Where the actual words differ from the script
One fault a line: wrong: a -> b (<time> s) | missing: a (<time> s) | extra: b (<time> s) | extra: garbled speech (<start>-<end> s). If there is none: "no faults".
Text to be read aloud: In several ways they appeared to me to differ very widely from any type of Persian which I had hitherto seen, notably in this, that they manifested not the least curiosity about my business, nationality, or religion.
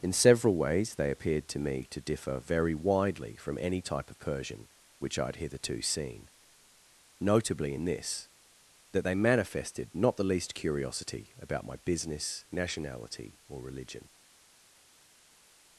no faults